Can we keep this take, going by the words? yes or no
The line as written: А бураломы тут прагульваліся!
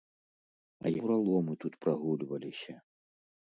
yes